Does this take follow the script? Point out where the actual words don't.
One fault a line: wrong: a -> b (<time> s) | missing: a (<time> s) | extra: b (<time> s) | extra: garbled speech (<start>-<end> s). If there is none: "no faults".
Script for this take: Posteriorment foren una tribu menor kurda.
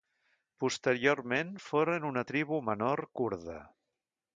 no faults